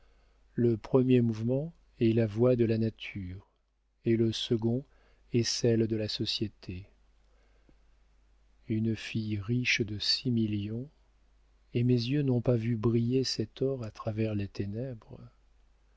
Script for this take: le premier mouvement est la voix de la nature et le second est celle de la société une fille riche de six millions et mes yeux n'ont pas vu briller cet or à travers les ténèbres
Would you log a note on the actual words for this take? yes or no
no